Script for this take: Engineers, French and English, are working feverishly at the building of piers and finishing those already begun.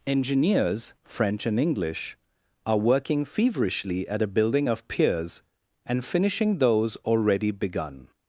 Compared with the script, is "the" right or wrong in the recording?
wrong